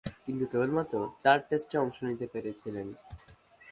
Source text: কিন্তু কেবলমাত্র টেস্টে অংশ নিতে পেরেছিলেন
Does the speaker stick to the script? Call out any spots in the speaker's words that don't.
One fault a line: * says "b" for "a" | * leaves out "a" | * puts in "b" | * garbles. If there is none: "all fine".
* puts in "চার"